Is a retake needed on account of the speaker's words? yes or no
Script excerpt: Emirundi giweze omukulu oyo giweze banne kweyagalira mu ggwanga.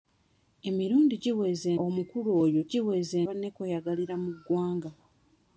no